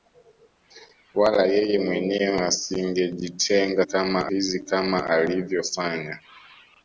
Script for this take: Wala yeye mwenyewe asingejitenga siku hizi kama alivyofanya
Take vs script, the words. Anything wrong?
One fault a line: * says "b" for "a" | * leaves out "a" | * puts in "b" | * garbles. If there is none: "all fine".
* says "kama" for "siku"